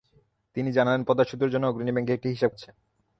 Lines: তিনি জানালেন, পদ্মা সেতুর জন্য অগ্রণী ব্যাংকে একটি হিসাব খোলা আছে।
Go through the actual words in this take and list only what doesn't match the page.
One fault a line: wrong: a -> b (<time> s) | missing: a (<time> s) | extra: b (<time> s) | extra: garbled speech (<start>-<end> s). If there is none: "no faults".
missing: খোলা (2.5 s)